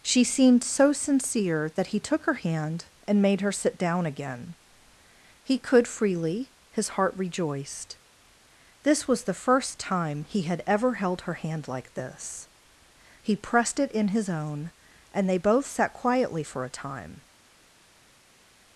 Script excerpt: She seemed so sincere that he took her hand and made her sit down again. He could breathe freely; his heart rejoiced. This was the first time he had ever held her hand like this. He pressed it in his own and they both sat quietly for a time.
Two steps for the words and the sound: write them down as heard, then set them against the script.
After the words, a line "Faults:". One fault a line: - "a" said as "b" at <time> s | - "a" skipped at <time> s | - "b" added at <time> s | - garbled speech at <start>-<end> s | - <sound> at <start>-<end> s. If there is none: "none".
She seemed so sincere that he took her hand and made her sit down again. He could freely; his heart rejoiced. This was the first time he had ever held her hand like this. He pressed it in his own and they both sat quietly for a time.
Faults:
- "breathe" skipped at 5.9 s